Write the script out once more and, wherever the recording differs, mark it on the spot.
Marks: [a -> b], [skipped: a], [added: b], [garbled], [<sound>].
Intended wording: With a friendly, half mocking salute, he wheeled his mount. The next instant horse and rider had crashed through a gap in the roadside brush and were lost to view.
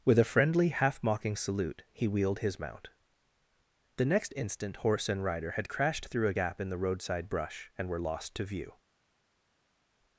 With a friendly, half mocking salute, he wheeled his mount. The next instant horse and rider had crashed through a gap in the roadside brush and were lost to view.